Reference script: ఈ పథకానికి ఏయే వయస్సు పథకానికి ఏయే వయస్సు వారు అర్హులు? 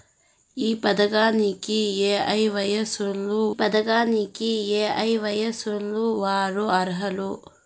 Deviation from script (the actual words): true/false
false